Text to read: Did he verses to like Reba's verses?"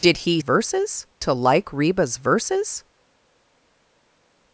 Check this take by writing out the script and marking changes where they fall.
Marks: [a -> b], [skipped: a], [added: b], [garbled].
Did he verses to like Reba's verses?"